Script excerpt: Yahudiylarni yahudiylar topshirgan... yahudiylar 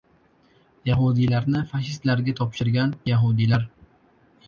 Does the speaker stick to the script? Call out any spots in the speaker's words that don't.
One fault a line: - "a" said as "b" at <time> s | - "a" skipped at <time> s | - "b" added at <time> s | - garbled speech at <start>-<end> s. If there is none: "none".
- "yahudiylar" said as "fashistlarga" at 1.7 s